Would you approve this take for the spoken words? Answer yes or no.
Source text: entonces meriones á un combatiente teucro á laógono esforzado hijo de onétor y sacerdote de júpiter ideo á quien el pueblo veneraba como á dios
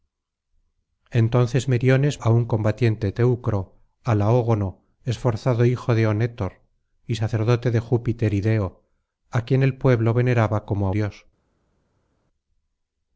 yes